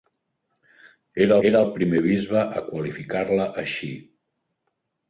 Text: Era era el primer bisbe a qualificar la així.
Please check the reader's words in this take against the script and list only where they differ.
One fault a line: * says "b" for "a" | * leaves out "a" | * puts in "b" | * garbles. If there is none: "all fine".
all fine